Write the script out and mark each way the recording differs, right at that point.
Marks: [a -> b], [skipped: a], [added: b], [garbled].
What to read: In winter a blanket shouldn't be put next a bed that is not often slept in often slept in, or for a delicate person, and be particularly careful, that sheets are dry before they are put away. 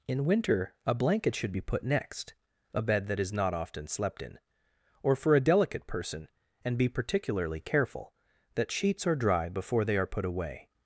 In winter a blanket [shouldn't -> should] be put next a bed that is not often slept in [skipped: often slept in,] or for a delicate person, and be particularly careful, that sheets are dry before they are put away.